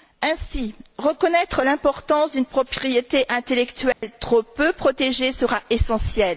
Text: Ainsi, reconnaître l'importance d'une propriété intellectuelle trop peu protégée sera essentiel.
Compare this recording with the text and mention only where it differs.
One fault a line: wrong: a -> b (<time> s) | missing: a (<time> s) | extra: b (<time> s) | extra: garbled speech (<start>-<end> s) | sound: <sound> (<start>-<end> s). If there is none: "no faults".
sound: dropout (3.9-4.0 s)